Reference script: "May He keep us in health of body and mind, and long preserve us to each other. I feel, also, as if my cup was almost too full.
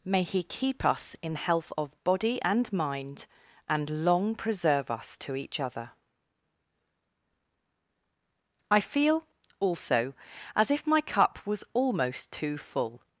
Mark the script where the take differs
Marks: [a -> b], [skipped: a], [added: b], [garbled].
"May He keep us in health of body and mind, and long preserve us to each other. I feel, also, as if my cup was almost too full.